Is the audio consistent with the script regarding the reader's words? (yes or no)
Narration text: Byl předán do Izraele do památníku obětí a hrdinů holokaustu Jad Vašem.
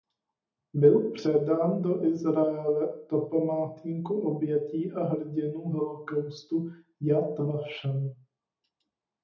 yes